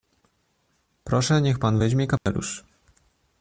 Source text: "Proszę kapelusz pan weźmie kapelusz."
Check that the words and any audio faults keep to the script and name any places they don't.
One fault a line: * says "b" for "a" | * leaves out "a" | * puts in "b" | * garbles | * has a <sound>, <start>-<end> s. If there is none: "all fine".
* says "niech" for "kapelusz"
* has a dropout, 2.2-2.3 s